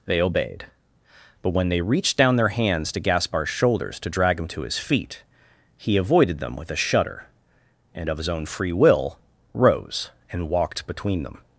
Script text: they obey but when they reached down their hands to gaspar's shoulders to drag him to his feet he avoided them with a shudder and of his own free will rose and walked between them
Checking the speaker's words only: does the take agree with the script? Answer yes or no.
no